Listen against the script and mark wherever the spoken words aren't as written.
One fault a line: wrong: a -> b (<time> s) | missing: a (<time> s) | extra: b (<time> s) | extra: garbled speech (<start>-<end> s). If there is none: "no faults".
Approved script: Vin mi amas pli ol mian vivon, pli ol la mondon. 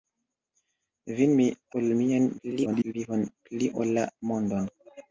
missing: amas pli (1.4 s)
extra: garbled speech (2.4-2.9 s)